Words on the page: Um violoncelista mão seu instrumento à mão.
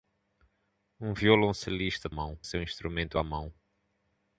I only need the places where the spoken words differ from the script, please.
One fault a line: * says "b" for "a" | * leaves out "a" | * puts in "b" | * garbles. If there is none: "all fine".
all fine